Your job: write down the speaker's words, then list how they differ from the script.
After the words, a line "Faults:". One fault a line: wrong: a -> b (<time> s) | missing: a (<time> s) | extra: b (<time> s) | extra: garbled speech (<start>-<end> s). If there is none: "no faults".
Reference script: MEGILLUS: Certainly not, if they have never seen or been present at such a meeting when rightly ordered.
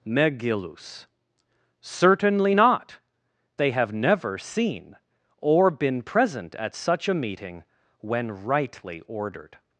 MEGILLUS: Certainly not, they have never seen or been present at such a meeting when rightly ordered.
Faults:
missing: if (3.0 s)